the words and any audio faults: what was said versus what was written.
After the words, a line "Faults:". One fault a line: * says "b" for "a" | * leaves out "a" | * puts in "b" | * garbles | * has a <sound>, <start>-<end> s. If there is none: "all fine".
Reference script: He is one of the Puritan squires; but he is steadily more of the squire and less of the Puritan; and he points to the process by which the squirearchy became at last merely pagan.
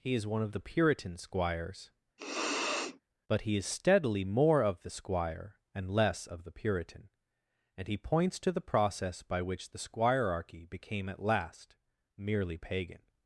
He is one of the Puritan squires; but he is steadily more of the squire and less of the Puritan; and he points to the process by which the squirearchy became at last merely pagan.
Faults:
* has a sniff, 2.2-3.0 s